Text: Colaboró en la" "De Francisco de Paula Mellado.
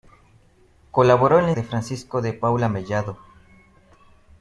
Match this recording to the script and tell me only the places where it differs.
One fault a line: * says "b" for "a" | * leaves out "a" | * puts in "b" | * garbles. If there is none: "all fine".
all fine